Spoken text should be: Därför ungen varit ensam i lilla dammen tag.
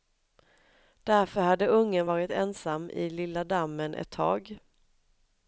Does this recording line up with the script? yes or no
no